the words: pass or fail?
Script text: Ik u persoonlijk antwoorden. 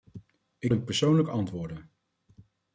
pass